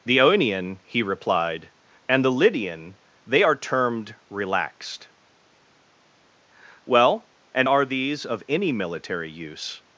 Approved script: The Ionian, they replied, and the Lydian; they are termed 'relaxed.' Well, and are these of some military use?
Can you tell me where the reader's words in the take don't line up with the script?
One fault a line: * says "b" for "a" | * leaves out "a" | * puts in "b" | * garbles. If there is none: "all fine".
* says "he" for "they"
* says "any" for "some"